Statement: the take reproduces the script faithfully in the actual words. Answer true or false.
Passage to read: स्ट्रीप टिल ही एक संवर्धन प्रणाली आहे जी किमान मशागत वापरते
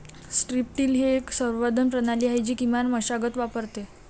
true